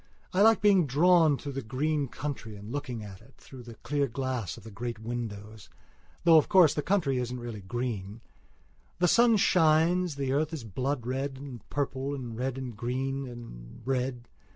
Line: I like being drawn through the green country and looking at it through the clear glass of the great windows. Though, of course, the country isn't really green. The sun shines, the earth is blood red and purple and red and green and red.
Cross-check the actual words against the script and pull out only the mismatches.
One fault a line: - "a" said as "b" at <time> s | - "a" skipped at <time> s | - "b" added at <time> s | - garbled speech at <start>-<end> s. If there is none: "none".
none